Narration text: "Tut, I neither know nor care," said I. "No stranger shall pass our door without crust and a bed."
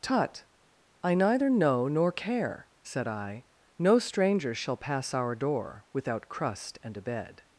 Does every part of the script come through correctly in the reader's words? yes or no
yes